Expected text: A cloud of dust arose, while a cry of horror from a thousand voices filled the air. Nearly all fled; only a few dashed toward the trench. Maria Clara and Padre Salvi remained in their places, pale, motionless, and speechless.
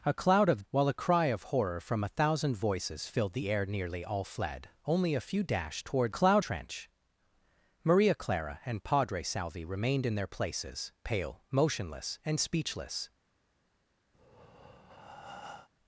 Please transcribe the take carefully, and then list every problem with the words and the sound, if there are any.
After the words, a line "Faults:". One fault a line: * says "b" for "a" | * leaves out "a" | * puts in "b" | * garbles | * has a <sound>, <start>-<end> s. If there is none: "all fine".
A cloud of while a cry of horror from a thousand voices filled the air. Nearly all fled; only a few dashed toward cloud trench. Maria Clara and Padre Salvi remained in their places, pale, motionless, and speechless.
Faults:
* leaves out "dust arose"
* says "cloud" for "the"
* has a breath, 14.1-15.7 s